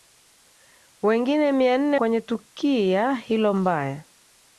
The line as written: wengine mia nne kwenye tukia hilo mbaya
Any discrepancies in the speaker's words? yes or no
no